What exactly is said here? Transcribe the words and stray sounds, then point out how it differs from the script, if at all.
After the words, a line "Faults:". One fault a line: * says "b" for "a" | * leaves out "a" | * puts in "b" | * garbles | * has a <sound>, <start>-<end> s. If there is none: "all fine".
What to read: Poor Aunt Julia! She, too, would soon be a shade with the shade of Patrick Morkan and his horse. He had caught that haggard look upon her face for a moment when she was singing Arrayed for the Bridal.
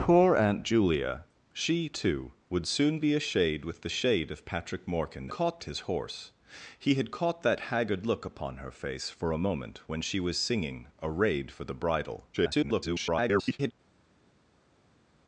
Poor Aunt Julia! She, too, would soon be a shade with the shade of Patrick Morkan caught his horse. He had caught that haggard look upon her face for a moment when she was singing Arrayed for the Bridal. [garbled]
Faults:
* says "caught" for "and"
* garbles